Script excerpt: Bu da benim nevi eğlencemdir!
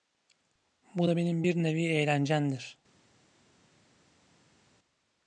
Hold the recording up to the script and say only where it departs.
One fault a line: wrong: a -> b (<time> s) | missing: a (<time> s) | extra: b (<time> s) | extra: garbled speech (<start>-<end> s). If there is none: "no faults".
extra: bir (1.4 s)